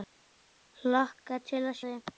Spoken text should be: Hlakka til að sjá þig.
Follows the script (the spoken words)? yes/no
no